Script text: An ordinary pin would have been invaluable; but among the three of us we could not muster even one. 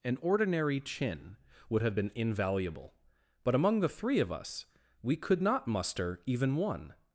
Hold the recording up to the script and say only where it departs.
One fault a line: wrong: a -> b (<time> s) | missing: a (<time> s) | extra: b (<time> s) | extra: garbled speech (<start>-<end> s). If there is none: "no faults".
wrong: pin -> chin (0.8 s)